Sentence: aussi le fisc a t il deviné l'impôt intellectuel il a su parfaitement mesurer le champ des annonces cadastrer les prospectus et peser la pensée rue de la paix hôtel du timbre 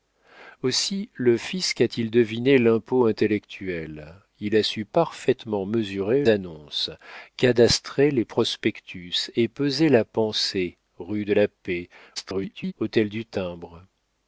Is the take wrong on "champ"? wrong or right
wrong